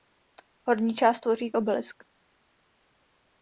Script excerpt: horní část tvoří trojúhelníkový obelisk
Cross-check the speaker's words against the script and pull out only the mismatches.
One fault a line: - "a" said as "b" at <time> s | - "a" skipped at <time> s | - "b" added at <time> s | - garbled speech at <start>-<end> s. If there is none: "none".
- "trojúhelníkový" skipped at 1.5 s